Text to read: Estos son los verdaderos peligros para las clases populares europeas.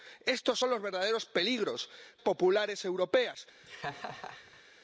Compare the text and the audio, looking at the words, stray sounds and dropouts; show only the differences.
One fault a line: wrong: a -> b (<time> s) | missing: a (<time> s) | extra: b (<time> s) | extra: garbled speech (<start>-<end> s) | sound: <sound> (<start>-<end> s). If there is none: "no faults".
missing: para las clases (1.9 s)
sound: laugh (3.6-4.6 s)